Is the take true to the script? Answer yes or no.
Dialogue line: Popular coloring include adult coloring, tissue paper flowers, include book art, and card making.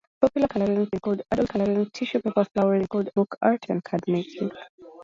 yes